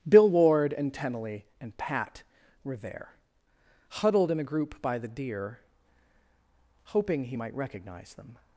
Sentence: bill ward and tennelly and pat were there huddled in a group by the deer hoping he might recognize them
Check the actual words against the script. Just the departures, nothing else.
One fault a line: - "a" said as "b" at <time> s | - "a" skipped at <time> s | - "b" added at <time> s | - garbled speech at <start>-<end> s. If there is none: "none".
none